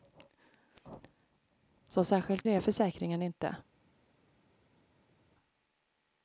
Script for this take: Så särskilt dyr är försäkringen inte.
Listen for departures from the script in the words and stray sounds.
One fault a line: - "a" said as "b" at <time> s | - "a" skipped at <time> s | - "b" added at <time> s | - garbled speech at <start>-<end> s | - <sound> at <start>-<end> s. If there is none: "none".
- "dyr" skipped at 2.5 s